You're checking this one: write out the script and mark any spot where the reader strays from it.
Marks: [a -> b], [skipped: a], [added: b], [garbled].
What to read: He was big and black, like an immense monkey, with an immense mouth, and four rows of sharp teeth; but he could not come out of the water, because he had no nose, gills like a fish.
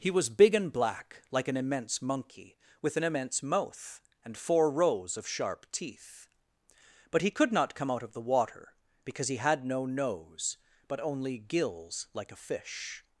He was big and black, like an immense monkey, with an immense mouth, and four rows of sharp teeth; but he could not come out of the water, because he had no nose, [added: but only] gills like a fish.